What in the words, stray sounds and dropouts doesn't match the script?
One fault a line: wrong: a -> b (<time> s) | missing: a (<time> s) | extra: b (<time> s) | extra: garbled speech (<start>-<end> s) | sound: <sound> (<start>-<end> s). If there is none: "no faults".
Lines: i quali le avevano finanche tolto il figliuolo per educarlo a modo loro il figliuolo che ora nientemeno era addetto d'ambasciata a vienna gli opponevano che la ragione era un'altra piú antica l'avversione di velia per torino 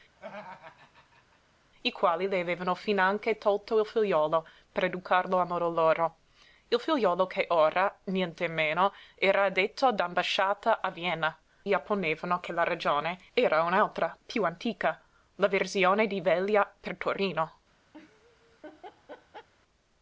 sound: laugh (0.2-1.4 s)
sound: laugh (17.9-19.5 s)